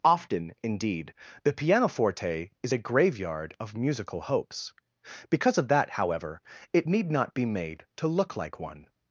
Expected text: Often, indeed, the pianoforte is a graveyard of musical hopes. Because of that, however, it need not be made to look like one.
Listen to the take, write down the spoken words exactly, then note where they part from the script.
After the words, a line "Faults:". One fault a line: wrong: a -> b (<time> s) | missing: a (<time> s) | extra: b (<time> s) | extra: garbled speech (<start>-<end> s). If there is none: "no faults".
Often, indeed, the pianoforte is a graveyard of musical hopes. Because of that, however, it need not be made to look like one.
Faults:
no faults